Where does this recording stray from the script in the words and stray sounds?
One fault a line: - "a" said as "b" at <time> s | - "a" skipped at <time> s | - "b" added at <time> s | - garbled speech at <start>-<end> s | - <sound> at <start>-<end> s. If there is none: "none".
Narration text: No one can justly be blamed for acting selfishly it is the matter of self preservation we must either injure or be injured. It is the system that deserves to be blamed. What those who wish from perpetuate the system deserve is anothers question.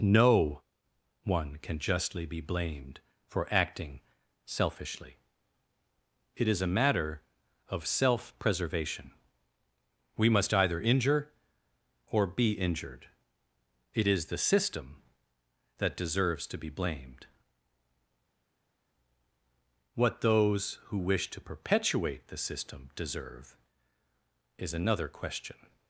- "the" said as "a" at 6.6 s
- "from" said as "to" at 21.3 s
- "anothers" said as "another" at 24.7 s